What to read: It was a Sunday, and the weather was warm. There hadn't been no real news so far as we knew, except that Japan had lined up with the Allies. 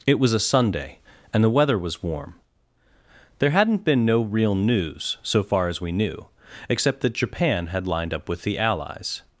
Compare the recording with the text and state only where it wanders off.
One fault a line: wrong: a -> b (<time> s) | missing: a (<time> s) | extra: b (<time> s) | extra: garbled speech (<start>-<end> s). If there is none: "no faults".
no faults